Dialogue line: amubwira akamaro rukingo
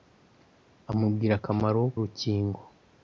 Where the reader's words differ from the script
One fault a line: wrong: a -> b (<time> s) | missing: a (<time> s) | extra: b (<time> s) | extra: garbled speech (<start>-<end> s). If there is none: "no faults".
no faults